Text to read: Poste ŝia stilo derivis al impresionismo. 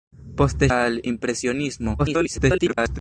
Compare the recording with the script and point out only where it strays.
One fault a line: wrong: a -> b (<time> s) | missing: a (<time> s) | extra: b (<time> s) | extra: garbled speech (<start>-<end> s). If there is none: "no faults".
missing: ŝia stilo derivis (0.7 s)
extra: garbled speech (2.0-3.0 s)